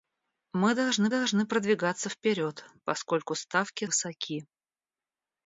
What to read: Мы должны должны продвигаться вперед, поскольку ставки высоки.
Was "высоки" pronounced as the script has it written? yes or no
yes